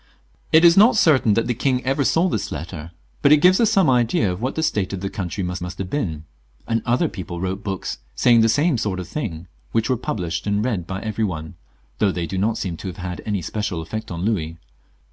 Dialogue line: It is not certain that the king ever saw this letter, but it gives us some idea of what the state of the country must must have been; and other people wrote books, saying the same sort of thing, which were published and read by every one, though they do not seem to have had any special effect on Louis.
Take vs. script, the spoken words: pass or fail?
pass